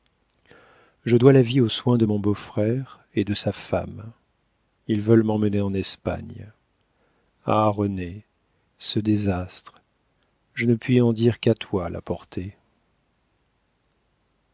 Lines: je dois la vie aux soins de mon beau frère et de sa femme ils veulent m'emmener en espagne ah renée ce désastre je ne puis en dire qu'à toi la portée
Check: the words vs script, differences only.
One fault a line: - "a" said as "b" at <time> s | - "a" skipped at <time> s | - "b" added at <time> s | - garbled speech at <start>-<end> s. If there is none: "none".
none